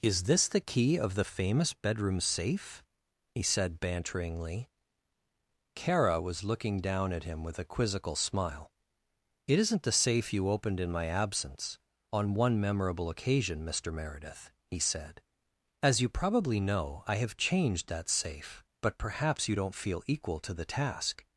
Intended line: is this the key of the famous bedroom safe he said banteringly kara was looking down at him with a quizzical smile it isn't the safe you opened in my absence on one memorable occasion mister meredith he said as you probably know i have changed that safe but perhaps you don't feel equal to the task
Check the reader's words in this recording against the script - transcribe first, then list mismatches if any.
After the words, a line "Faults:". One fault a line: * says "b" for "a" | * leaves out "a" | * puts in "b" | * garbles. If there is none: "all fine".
is this the key of the famous bedroom safe he said banteringly kara was looking down at him with a quizzical smile it isn't the safe you opened in my absence on one memorable occasion mister meredith he said as you probably know i have changed that safe but perhaps you don't feel equal to the task
Faults:
all fine